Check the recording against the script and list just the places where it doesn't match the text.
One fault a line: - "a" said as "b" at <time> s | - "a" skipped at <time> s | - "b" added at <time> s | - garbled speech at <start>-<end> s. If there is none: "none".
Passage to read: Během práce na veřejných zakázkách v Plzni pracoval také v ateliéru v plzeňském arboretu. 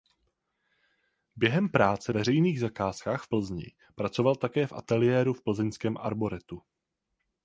- "na" skipped at 2.1 s